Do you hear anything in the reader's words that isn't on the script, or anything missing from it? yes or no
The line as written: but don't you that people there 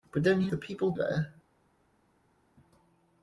no